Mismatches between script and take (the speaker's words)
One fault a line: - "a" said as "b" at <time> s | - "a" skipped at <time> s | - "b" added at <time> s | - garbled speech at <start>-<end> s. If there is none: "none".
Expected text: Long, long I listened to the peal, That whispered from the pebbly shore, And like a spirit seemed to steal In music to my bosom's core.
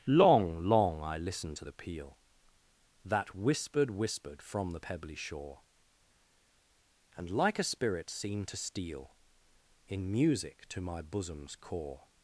- "whispered" added at 3.9 s